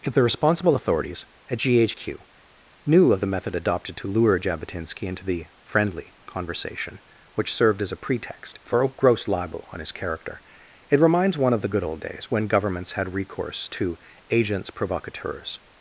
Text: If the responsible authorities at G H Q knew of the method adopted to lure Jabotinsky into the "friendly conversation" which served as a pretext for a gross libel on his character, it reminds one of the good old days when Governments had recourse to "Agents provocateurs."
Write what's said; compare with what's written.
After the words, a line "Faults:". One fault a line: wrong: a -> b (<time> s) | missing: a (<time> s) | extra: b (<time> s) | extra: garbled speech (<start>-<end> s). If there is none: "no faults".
If the responsible authorities at G H Q knew of the method adopted to lure Jabotinsky into the "friendly conversation" which served as a pretext for a gross libel on his character, it reminds one of the good old days when Governments had recourse to "Agents provocateurs."
Faults:
no faults